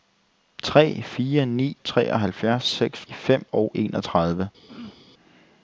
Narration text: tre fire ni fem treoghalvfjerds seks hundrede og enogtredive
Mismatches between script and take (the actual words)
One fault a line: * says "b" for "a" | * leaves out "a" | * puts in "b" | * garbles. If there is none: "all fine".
* leaves out "fem"
* says "fem" for "hundrede"